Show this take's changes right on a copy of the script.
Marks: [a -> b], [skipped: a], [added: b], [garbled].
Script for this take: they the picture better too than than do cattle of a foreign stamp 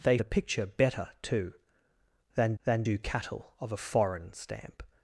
they the picture better too than than do cattle of a foreign stamp